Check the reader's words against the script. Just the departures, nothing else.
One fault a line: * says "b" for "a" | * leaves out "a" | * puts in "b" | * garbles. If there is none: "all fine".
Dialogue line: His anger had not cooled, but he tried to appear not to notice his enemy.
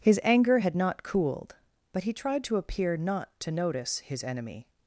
all fine